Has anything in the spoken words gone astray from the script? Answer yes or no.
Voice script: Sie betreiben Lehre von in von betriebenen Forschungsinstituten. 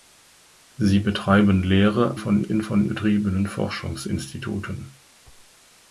no